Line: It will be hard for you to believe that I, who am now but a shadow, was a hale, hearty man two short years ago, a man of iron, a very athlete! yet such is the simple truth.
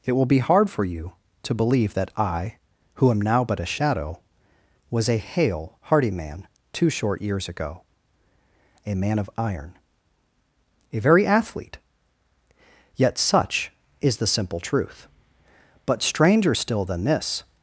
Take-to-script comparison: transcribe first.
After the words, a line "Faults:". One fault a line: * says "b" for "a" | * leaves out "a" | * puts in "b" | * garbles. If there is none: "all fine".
It will be hard for you to believe that I, who am now but a shadow, was a hale, hearty man two short years ago, a man of iron, a very athlete! yet such is the simple truth. But stranger still than this
Faults:
* puts in "But stranger still than this"